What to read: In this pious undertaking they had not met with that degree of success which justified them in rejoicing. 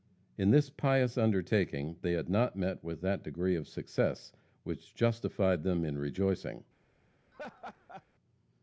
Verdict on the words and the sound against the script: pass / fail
fail